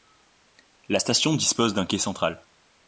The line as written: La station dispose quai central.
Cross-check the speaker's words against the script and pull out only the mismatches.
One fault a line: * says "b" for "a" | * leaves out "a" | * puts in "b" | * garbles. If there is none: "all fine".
* puts in "d'un"